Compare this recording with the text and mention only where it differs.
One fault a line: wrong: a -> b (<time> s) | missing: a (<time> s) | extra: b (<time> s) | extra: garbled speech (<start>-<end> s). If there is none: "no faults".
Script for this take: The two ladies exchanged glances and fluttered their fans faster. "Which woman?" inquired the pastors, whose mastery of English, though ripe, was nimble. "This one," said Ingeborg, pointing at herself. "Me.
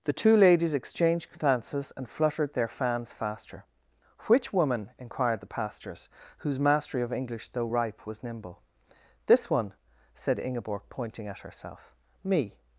no faults